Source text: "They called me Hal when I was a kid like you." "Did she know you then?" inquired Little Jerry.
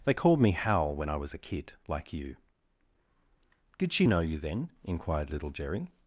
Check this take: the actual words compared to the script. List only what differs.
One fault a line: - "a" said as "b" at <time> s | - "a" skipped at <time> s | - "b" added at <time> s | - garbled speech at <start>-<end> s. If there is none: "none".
none